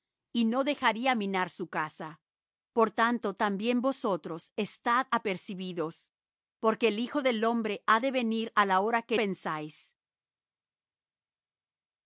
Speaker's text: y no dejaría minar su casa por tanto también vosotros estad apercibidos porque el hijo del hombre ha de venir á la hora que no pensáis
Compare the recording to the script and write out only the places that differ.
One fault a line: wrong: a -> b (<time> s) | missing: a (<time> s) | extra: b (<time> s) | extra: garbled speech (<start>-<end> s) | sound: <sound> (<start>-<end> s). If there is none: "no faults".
missing: no (9.2 s)